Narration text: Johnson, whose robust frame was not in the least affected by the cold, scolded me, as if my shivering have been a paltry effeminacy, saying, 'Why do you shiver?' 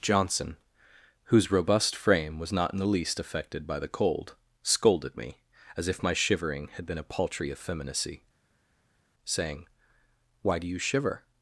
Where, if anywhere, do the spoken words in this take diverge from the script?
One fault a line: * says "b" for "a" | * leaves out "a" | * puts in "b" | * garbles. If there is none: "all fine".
* says "had" for "have"